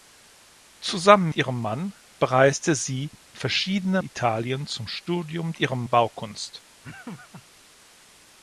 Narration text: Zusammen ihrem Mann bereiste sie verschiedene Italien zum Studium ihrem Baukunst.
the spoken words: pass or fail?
pass